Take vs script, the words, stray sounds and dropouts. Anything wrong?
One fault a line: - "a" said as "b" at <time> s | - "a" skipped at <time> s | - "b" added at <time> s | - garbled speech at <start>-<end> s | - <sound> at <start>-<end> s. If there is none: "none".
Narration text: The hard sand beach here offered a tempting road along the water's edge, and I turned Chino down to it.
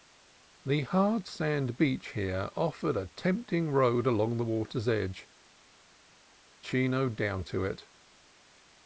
- "and I turned" skipped at 5.3 s